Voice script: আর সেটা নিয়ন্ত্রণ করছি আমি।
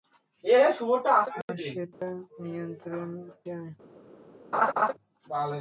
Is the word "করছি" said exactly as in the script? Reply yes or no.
no